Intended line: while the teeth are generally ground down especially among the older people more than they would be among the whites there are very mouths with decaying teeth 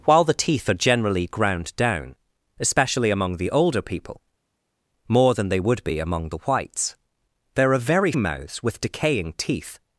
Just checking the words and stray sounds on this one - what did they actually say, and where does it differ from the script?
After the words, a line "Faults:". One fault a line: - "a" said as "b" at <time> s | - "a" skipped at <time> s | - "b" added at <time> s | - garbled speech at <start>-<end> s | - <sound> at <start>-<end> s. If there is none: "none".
while the teeth are generally ground down especially among the older people more than they would be among the whites there are very mouths with decaying teeth
Faults:
none